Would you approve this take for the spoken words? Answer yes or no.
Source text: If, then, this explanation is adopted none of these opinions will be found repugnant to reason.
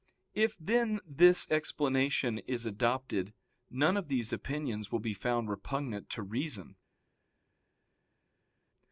yes